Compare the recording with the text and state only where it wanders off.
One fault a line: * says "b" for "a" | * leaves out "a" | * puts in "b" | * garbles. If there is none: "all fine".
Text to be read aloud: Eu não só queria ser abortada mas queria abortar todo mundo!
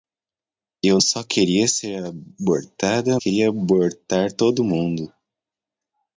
* leaves out "não"
* leaves out "mas"